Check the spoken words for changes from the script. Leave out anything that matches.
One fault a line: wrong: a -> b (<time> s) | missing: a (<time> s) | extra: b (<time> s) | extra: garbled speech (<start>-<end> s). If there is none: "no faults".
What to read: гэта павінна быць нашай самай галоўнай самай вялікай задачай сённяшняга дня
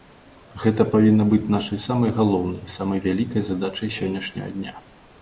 no faults